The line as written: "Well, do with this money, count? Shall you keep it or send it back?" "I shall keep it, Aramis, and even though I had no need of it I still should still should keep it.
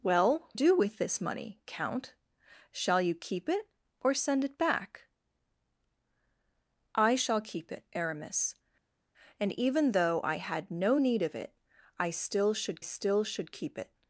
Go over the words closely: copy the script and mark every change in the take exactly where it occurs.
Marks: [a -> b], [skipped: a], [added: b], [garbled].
"Well, do with this money, count? Shall you keep it or send it back?" "I shall keep it, Aramis, and even though I had no need of it I still should still should keep it.